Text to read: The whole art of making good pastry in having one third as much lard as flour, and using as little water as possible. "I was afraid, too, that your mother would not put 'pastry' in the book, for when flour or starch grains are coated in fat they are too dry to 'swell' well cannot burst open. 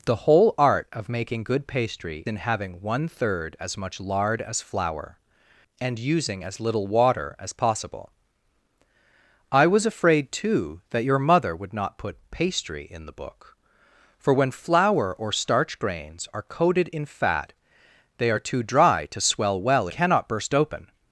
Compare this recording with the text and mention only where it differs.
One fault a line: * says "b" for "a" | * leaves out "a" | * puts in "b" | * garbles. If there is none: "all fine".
all fine